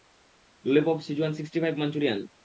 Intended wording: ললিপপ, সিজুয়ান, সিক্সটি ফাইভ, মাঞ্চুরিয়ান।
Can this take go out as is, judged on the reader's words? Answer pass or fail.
pass